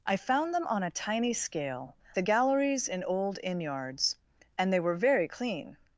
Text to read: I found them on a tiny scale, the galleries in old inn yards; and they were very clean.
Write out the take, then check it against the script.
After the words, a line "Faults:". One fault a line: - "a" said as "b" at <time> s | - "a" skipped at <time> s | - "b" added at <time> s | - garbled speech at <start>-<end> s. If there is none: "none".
I found them on a tiny scale, the galleries in old inn yards; and they were very clean.
Faults:
none